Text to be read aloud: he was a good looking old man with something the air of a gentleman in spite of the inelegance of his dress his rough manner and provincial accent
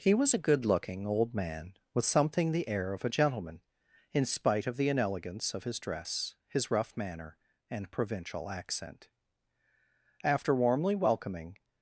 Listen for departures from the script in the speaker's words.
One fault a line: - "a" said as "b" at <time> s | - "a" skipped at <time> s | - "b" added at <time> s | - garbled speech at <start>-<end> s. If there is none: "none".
- "after warmly welcoming" added at 10.2 s